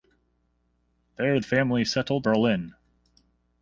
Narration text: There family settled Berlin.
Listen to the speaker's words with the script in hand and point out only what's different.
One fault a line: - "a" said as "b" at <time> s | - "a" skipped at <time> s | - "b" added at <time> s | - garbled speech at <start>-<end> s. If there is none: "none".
none